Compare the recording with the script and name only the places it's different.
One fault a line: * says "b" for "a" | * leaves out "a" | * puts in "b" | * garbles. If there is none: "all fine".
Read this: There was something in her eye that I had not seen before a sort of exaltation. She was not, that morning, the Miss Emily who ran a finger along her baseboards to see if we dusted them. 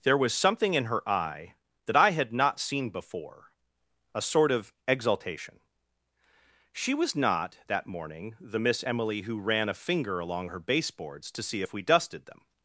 all fine